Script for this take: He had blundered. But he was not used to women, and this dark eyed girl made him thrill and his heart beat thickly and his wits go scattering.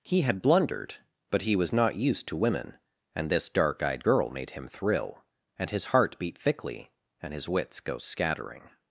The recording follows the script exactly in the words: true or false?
true